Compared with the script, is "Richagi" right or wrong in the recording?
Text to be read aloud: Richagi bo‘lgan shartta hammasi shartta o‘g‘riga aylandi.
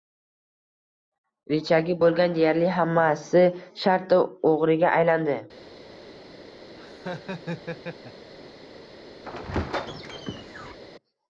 right